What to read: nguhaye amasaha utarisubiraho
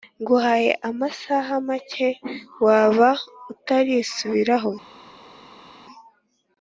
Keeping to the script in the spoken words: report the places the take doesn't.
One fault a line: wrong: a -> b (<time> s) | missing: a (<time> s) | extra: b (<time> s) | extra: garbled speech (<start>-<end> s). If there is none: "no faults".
extra: make waba (1.7 s)